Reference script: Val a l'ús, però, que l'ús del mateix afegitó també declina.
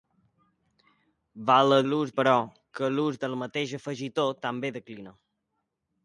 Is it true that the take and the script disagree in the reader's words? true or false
false